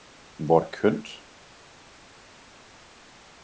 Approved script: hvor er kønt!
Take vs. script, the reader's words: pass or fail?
pass